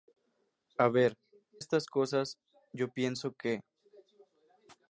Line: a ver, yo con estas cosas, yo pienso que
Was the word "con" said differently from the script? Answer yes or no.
yes